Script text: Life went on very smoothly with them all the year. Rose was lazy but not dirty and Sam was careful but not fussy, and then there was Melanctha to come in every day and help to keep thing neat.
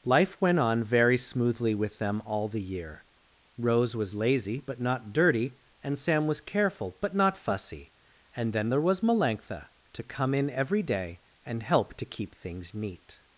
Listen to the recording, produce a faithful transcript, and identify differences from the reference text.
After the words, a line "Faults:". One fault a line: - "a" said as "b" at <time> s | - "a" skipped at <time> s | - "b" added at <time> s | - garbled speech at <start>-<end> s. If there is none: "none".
Life went on very smoothly with them all the year. Rose was lazy but not dirty and Sam was careful but not fussy, and then there was Melanctha to come in every day and help to keep things neat.
Faults:
- "thing" said as "things" at 12.3 s